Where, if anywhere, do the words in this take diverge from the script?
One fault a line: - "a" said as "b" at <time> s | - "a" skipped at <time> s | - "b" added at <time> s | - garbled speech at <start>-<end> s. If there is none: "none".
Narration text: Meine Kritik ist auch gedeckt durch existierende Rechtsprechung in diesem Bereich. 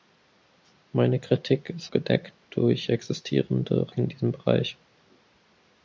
- "auch" skipped at 1.9 s
- "Rechtsprechung" skipped at 3.9 s